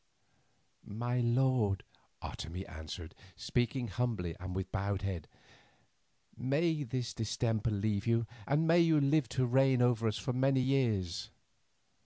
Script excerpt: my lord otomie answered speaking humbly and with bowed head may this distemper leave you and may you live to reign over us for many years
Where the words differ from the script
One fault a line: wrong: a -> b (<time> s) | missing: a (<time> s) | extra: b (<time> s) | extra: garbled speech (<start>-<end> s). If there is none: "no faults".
no faults